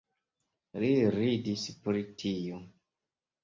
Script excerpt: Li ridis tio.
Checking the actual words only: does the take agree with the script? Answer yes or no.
no